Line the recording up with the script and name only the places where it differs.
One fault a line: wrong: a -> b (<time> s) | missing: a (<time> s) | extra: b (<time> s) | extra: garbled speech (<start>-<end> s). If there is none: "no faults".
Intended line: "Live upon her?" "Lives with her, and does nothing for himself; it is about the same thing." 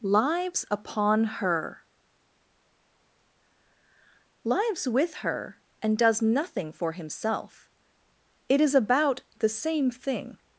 wrong: Live -> Lives (0.0 s)